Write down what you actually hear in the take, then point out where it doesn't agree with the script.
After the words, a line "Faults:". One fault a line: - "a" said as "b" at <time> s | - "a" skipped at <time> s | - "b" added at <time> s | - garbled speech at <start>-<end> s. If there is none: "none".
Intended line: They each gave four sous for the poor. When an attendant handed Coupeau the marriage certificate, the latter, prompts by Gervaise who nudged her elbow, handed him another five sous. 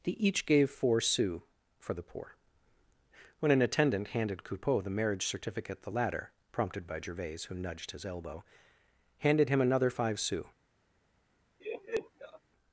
They each gave four sous for the poor. When an attendant handed Coupeau the marriage certificate, the latter, prompted by Gervaise who nudged his elbow, handed him another five sous.
Faults:
- "prompts" said as "prompted" at 6.5 s
- "her" said as "his" at 7.9 s